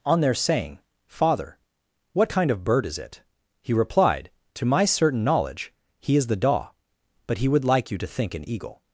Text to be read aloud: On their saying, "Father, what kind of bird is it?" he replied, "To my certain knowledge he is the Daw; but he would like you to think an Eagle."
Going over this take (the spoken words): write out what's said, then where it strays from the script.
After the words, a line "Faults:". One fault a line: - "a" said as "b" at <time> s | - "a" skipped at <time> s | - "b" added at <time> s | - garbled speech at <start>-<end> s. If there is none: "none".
On their saying, "Father, what kind of bird is it?" he replied, "To my certain knowledge he is the Daw; but he would like you to think an Eagle."
Faults:
none